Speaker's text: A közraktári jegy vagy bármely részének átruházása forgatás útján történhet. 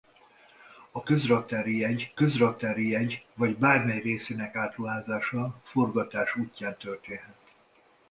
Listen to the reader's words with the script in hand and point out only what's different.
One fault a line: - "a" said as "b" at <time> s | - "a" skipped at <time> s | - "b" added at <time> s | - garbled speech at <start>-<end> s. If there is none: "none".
- "közraktári jegy" added at 2.1 s